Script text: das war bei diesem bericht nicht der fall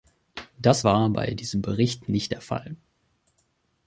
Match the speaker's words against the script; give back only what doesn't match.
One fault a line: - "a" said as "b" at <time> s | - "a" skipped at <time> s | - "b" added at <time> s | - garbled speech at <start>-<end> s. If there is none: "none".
none